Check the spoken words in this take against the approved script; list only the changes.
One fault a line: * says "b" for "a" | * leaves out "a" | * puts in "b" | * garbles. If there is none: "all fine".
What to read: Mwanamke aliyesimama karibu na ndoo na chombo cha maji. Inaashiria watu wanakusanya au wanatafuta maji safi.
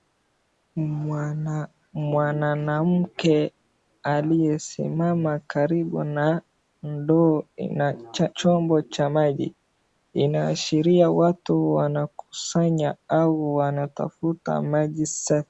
* leaves out "na"